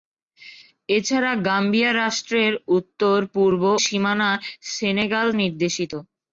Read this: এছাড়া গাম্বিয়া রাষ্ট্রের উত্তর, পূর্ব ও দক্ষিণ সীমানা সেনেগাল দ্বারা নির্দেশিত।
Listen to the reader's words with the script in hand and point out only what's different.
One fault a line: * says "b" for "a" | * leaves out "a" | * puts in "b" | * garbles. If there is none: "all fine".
* leaves out "ও দক্ষিণ"
* leaves out "দ্বারা"